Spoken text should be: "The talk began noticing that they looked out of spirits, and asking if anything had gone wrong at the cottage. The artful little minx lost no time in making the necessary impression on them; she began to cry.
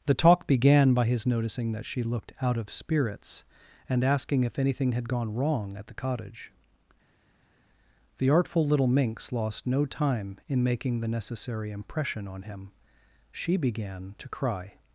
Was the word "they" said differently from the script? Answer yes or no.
yes